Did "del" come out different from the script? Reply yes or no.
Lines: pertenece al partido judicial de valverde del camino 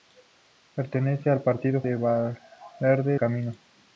yes